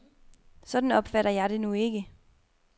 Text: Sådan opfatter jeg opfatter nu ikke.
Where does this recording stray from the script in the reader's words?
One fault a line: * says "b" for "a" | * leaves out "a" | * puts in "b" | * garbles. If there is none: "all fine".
* says "det" for "opfatter"